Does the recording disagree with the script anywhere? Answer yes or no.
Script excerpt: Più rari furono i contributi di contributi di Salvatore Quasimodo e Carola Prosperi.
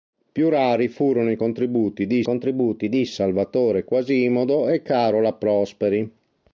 no